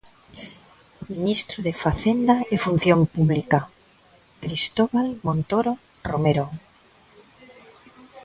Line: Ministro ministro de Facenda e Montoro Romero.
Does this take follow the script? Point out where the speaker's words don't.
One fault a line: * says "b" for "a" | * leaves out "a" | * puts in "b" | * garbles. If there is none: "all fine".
* leaves out "ministro"
* puts in "Función Pública Cristóbal"